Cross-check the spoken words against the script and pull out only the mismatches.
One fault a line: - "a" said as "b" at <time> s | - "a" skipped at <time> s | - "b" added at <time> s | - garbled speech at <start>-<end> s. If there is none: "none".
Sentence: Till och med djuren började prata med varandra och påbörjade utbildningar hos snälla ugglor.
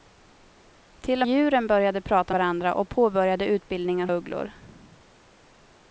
- "med" skipped at 1.3 s
- "med" skipped at 2.3 s
- "hos snälla" skipped at 4.1 s